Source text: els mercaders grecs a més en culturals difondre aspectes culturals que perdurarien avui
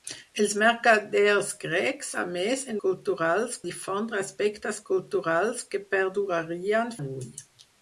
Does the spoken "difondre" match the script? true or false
true